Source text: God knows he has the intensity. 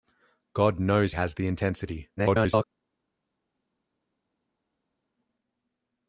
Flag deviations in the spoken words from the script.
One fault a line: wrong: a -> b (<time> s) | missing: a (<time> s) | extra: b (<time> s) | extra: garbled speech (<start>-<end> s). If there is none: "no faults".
missing: he (1.1 s)
extra: garbled speech (2.2-2.6 s)